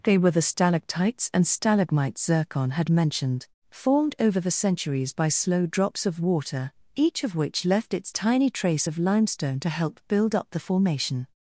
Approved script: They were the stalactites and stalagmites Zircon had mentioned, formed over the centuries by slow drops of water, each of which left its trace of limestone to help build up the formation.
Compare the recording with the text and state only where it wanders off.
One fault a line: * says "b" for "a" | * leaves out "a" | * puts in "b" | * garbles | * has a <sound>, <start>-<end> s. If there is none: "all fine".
* puts in "tiny"